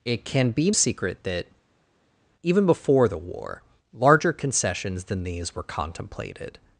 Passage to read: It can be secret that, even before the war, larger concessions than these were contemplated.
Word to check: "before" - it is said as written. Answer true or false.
true